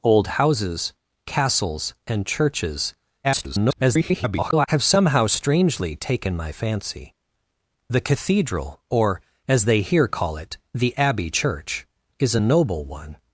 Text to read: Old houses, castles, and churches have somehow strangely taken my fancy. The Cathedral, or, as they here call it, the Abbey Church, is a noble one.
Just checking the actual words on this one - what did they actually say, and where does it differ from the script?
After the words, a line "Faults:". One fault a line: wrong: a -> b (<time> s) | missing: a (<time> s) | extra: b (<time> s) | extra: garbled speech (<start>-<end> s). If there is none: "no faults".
Old houses, castles, and churches [garbled] have somehow strangely taken my fancy. The Cathedral, or, as they here call it, the Abbey Church, is a noble one.
Faults:
extra: garbled speech (3.2-4.7 s)